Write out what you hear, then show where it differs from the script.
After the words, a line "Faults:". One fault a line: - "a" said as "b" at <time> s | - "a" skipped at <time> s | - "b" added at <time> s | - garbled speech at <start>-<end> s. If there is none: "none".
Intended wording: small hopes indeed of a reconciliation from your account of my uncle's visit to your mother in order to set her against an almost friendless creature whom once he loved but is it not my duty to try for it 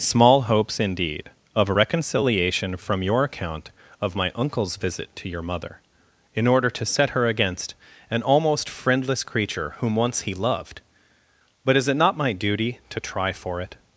small hopes indeed of a reconciliation from your account of my uncle's visit to your mother in order to set her against an almost friendless creature whom once he loved but is it not my duty to try for it
Faults:
none